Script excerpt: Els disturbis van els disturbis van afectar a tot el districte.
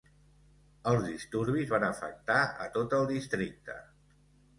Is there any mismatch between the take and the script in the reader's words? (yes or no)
yes